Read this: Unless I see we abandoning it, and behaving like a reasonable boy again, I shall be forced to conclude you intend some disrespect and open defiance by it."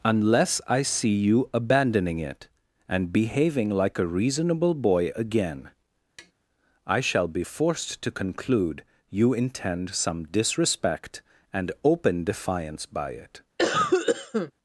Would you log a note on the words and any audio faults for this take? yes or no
yes